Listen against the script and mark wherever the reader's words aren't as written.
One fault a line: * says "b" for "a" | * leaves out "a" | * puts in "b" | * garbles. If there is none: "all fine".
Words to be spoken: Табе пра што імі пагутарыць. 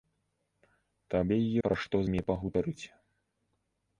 all fine